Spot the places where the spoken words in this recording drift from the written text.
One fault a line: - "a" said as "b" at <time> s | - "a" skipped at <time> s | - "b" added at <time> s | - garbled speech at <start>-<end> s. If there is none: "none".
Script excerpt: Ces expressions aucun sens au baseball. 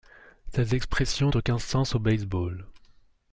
none